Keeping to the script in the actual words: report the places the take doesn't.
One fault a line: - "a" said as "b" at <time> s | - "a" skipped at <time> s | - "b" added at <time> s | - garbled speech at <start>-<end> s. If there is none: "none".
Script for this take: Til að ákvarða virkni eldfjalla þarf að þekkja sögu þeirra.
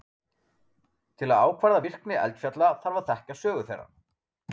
none